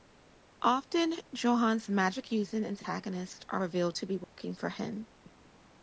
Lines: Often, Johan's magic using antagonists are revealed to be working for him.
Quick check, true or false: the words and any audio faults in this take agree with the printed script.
false